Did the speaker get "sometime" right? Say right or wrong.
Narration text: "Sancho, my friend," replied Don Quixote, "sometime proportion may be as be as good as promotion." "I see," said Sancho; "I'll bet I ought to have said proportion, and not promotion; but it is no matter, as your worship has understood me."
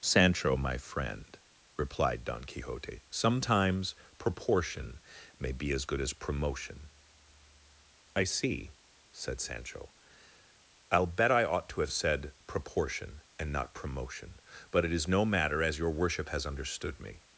wrong